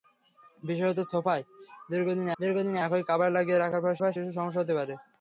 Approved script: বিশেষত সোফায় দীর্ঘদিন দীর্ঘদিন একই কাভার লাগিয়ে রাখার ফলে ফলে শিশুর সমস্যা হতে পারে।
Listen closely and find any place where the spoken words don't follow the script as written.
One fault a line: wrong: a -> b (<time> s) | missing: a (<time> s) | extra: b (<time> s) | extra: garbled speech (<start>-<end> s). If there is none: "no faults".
no faults